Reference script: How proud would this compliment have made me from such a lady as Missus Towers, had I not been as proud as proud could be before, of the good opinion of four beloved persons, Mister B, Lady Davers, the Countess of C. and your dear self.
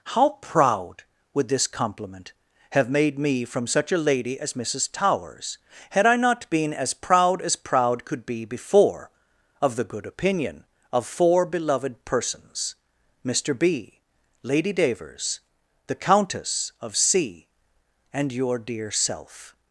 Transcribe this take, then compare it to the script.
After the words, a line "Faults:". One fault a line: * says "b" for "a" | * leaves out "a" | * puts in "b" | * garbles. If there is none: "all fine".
How proud would this compliment have made me from such a lady as Missus Towers, had I not been as proud as proud could be before, of the good opinion of four beloved persons, Mister B, Lady Davers, the Countess of C. and your dear self.
Faults:
all fine